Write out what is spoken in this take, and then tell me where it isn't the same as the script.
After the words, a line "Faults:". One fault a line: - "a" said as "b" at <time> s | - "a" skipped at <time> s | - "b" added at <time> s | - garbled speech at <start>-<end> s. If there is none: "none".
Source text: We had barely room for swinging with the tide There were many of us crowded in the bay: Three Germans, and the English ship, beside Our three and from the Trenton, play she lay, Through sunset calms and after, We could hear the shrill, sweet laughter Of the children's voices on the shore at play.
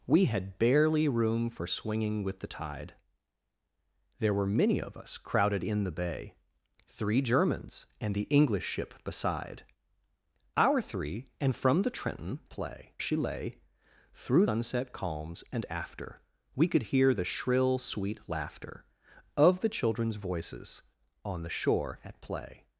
We had barely room for swinging with the tide There were many of us crowded in the bay: Three Germans, and the English ship, beside Our three and from the Trenton, play she lay, Through sunset calms and after, We could hear the shrill, sweet laughter Of the children's voices on the shore at play.
Faults:
none